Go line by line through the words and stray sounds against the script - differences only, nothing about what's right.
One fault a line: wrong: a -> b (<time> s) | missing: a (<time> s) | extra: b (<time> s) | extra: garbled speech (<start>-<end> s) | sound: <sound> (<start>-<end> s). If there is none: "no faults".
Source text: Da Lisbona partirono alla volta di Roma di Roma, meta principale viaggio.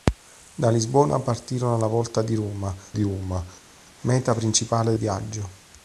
no faults